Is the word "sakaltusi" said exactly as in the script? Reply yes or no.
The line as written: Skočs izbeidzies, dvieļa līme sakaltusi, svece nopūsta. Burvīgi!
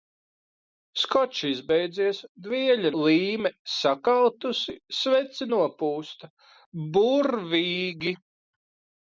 yes